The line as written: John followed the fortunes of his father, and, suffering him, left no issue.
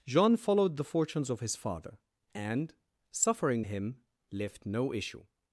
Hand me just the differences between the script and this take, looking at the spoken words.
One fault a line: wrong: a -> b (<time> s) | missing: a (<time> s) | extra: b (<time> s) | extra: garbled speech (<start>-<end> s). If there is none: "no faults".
no faults